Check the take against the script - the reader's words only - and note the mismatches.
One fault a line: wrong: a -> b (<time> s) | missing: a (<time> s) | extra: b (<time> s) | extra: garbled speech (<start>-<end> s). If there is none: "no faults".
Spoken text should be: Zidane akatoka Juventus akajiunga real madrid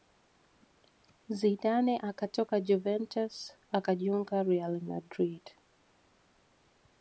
no faults